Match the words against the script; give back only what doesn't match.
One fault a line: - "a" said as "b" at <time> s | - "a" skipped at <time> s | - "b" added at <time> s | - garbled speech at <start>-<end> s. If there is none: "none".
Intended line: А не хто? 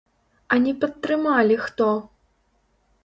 - "падтрымалі" added at 0.8 s